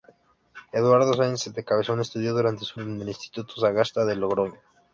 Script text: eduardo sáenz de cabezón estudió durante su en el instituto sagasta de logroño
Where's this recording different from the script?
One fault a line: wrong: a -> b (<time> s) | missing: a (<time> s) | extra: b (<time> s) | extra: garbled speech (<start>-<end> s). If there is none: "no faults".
no faults